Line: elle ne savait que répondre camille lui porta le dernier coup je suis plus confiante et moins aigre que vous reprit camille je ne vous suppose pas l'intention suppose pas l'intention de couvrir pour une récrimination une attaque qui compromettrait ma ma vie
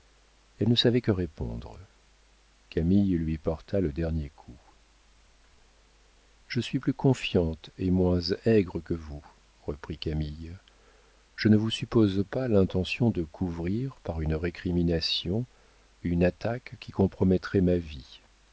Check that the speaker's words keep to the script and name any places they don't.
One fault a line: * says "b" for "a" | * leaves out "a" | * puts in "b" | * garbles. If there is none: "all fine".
* leaves out "suppose pas l'intention"
* says "par" for "pour"
* leaves out "ma"